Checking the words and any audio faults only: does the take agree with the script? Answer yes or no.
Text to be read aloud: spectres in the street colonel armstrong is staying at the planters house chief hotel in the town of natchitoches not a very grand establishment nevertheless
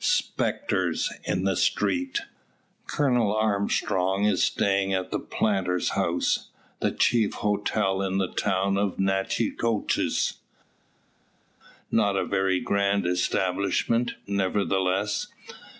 no